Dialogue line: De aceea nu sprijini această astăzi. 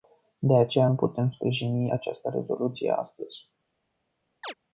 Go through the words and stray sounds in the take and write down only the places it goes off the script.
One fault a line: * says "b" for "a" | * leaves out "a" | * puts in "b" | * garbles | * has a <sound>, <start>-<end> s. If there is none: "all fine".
* puts in "putem"
* puts in "rezoluție"
* has a chirp, 4.4-4.5 s